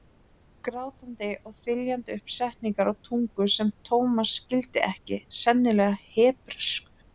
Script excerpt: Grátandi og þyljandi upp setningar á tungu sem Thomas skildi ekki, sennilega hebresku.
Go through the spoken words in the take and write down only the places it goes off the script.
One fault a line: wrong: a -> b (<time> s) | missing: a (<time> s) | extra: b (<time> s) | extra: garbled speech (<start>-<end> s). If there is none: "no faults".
no faults